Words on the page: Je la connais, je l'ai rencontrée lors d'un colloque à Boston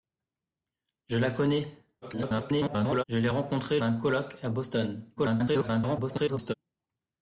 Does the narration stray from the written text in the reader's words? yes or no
yes